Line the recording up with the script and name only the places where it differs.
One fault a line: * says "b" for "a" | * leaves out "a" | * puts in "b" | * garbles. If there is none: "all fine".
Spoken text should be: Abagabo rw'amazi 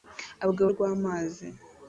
all fine